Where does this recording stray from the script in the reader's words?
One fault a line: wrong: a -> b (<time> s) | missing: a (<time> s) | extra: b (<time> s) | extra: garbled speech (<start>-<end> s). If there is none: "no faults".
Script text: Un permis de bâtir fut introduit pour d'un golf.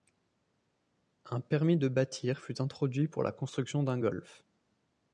extra: la construction (3.2 s)